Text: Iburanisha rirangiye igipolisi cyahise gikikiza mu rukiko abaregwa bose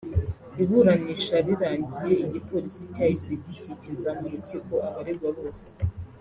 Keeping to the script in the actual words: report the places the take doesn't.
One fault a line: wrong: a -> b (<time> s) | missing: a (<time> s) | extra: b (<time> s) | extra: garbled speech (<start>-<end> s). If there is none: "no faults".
no faults